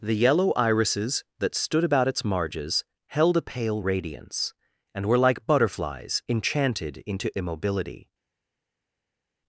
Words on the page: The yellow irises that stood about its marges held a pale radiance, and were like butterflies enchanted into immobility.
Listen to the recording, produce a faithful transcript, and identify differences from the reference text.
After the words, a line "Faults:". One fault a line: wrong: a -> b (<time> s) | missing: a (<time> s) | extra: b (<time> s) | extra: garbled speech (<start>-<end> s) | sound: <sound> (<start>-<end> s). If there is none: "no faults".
The yellow irises that stood about its marges held a pale radiance, and were like butterflies enchanted into immobility.
Faults:
no faults